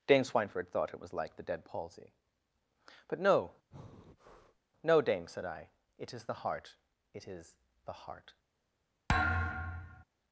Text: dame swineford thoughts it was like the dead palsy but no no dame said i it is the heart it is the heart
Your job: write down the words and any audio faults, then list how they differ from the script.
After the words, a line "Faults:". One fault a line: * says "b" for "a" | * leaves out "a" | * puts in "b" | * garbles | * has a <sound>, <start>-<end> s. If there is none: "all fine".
dame swineford thought it was like the dead palsy but no no dame said i it is the heart it is the heart
Faults:
* says "thought" for "thoughts"
* has a breath, 3.7-4.6 s
* has a thud, 9.1-10.0 s